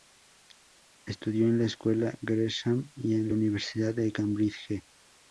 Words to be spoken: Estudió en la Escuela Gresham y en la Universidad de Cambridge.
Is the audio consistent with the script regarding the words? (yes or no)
yes